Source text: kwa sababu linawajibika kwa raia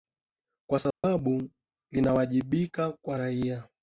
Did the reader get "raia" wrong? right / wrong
right